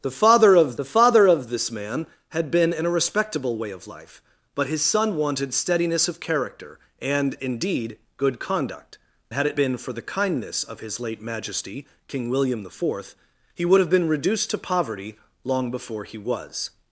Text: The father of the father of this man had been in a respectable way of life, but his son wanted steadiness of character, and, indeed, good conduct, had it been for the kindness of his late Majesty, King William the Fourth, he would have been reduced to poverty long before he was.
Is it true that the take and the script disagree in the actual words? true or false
false